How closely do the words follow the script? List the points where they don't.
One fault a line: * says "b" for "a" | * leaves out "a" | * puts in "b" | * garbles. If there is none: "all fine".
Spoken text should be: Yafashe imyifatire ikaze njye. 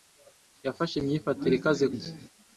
all fine